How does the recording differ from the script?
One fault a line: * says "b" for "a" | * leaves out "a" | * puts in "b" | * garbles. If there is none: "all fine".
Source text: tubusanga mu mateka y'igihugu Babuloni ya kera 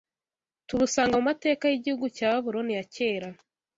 * puts in "cya"